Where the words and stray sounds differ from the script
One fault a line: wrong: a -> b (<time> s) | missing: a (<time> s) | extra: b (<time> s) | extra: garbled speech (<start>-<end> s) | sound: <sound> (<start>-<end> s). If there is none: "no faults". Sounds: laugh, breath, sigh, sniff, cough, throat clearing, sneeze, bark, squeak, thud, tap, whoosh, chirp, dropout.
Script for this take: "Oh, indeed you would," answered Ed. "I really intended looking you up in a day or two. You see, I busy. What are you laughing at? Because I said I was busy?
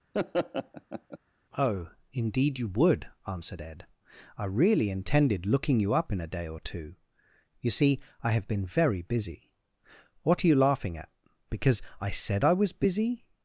sound: laugh (0.1-1.2 s)
extra: have been very (8.3 s)